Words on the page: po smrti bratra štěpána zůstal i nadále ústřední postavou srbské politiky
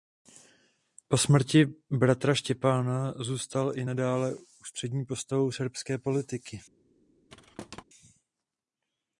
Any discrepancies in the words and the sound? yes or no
yes